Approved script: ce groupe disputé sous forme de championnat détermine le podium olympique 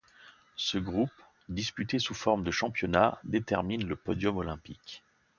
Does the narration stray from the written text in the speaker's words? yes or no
no